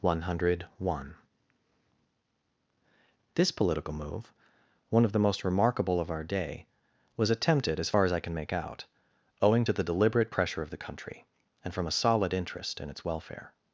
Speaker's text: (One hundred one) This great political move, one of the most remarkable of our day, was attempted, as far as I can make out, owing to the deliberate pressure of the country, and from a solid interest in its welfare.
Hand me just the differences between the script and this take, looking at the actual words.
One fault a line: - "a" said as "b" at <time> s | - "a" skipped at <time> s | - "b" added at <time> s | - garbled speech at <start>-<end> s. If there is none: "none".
- "great" skipped at 3.5 s